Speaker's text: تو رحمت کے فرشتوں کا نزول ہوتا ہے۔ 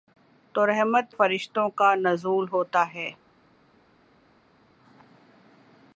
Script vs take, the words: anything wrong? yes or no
yes